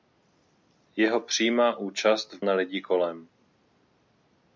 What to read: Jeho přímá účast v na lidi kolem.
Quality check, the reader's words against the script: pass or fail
pass